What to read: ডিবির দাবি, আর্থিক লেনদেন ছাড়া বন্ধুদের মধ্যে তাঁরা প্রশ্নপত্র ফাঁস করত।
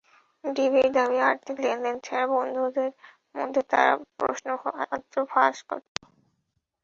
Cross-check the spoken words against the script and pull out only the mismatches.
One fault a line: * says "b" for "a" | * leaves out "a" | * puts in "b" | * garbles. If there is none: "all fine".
all fine